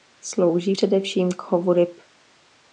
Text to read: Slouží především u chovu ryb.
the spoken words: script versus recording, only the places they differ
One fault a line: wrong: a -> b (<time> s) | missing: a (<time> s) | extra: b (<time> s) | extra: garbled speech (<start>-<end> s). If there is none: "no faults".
wrong: u -> k (1.3 s)